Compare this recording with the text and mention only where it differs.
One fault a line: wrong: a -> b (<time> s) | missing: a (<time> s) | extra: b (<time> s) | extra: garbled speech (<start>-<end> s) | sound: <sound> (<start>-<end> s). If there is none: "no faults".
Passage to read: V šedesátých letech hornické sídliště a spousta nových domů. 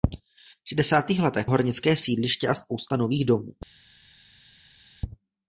no faults